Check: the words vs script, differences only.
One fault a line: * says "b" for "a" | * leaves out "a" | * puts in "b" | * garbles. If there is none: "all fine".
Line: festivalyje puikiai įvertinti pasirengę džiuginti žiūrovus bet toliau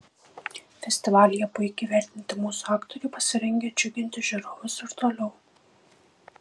* puts in "mūsų aktoriai"
* says "ir" for "bet"